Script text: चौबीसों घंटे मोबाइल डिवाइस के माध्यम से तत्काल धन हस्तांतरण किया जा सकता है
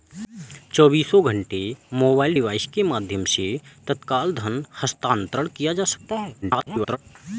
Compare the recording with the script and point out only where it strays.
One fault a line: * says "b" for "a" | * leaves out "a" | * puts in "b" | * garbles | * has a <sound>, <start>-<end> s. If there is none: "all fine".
* garbles